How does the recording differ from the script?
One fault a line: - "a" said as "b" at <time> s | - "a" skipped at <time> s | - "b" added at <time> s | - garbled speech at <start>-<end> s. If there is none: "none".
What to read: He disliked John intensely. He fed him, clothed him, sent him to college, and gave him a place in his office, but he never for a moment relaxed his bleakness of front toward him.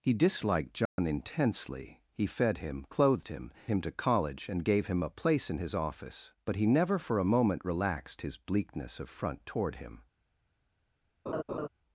- "sent" skipped at 3.5 s